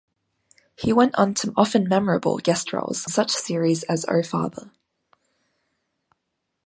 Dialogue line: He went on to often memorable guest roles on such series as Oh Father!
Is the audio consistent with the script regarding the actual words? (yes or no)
no